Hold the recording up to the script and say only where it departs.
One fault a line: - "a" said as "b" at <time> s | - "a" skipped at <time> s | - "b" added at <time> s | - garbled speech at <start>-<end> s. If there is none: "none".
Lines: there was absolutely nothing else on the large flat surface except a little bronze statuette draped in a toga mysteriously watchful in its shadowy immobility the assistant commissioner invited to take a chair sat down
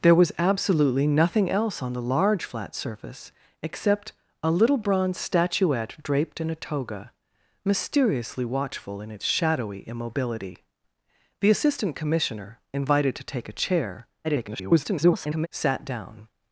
- garbled speech at 14.2-15.5 s